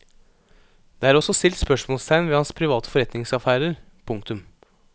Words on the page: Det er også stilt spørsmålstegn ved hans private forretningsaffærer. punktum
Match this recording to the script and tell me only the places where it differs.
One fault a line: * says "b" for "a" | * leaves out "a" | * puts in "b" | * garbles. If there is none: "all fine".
all fine